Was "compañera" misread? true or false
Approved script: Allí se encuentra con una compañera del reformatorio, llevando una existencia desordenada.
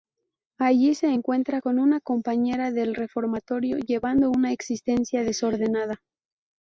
false